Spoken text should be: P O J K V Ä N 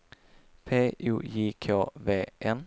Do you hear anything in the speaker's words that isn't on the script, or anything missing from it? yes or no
yes